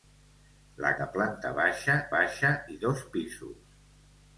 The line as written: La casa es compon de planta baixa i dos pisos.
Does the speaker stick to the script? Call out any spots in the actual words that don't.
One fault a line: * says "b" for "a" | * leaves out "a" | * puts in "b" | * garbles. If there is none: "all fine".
* leaves out "casa es compon"
* puts in "baixa"